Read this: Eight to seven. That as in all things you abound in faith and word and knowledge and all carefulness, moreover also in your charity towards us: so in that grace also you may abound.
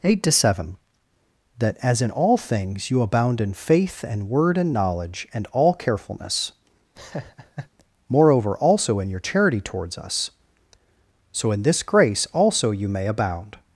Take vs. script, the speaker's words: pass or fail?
fail